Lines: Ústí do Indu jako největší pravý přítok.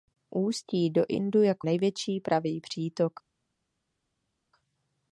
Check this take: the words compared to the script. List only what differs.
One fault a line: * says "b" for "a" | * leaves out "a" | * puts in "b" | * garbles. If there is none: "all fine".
all fine